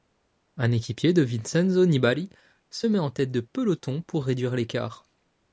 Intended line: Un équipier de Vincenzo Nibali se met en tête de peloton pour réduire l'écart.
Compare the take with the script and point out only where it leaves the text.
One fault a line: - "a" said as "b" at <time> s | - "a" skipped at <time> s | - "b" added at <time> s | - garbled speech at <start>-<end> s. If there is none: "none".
none